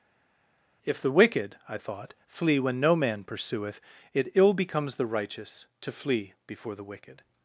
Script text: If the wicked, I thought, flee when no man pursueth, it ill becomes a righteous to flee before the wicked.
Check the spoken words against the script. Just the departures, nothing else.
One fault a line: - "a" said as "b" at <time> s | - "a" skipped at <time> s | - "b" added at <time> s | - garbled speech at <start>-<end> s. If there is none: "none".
- "a" said as "the" at 4.9 s